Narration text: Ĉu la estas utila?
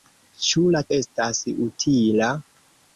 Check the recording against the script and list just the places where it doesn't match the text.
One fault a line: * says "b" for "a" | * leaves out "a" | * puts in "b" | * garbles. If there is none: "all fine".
all fine